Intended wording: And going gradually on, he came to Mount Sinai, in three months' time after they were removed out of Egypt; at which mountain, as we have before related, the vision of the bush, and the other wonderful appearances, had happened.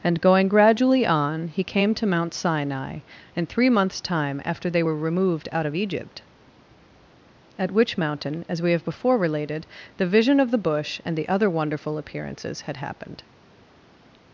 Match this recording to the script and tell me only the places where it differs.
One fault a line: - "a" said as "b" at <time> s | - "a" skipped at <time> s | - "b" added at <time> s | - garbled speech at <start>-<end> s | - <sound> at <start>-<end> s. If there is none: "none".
none